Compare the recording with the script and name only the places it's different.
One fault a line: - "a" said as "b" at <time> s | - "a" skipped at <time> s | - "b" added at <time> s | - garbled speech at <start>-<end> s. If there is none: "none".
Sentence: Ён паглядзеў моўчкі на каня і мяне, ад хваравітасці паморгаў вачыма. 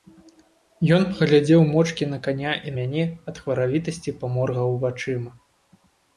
none